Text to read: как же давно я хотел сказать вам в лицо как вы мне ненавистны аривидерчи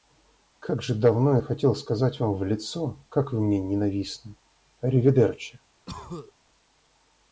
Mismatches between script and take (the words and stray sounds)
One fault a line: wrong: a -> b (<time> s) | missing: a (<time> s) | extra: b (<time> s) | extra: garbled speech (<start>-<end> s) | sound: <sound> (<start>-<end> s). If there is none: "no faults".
sound: cough (5.9-6.3 s)